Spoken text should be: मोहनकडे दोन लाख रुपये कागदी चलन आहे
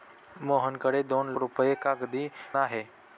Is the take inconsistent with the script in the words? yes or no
yes